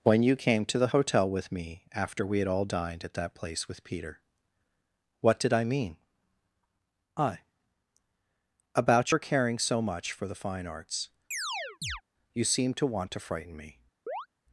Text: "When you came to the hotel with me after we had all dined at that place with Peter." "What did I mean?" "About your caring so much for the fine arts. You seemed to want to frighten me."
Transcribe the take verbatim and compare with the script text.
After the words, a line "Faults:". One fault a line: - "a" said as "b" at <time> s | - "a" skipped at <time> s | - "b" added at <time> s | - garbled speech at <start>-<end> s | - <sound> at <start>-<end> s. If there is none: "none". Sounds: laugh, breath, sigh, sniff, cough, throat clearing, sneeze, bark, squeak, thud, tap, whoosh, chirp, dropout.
"When you came to the hotel with me after we had all dined at that place with Peter." "What did I mean?" I "About your caring so much for the fine arts. You seemed to want to frighten me."
Faults:
- "I" added at 7.2 s
- chirp at 11.3-12.0 s
- chirp at 14.1-14.3 s